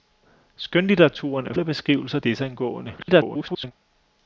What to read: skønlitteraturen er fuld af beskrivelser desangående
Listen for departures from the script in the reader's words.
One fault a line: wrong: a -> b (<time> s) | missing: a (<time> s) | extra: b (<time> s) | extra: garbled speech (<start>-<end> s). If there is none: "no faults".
missing: fuld (1.5 s)
extra: garbled speech (3.0-3.7 s)